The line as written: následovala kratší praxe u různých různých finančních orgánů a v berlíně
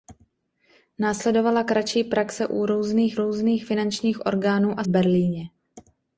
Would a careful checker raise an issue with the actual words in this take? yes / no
no